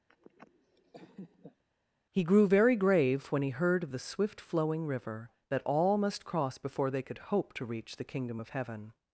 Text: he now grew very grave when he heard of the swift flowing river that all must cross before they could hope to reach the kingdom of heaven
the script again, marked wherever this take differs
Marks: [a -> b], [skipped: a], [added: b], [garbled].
he [skipped: now] grew very grave when he heard of the swift flowing river that all must cross before they could hope to reach the kingdom of heaven